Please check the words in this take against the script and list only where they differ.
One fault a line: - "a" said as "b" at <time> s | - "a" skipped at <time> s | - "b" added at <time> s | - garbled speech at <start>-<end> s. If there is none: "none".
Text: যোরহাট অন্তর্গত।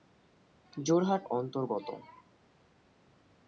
none